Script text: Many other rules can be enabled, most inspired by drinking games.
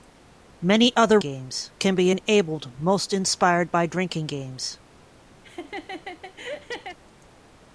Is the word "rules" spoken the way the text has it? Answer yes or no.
no